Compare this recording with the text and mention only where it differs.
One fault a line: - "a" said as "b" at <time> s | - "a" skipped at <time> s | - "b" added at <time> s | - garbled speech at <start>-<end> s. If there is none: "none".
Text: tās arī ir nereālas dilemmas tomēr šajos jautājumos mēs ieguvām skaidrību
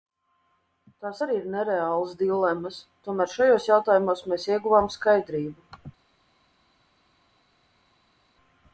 none